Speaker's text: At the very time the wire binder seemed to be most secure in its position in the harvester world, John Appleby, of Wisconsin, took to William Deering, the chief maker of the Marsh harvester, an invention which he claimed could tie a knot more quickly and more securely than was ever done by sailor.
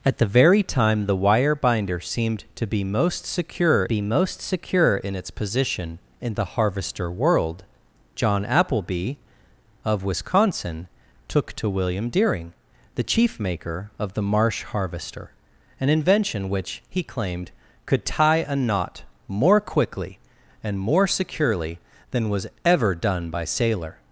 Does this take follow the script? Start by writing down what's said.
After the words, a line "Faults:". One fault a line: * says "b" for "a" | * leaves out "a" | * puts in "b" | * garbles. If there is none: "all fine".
At the very time the wire binder seemed to be most secure be most secure in its position in the harvester world, John Appleby, of Wisconsin, took to William Deering, the chief maker of the Marsh harvester, an invention which he claimed could tie a knot more quickly and more securely than was ever done by sailor.
Faults:
* puts in "be most secure"